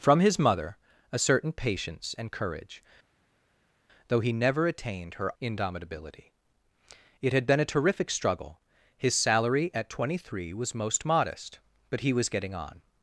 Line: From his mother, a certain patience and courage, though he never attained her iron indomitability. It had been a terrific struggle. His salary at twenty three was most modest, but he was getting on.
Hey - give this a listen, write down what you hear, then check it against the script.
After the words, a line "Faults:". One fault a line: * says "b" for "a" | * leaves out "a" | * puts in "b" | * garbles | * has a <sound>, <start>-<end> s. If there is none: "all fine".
From his mother, a certain patience and courage, though he never attained her indomitability. It had been a terrific struggle. His salary at twenty three was most modest, but he was getting on.
Faults:
* leaves out "iron"